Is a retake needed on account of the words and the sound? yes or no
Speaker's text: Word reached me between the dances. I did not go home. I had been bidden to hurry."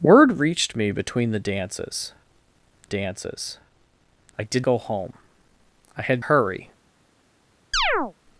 yes